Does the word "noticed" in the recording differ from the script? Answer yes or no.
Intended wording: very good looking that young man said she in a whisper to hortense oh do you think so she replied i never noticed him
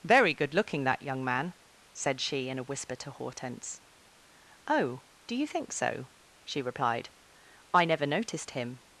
no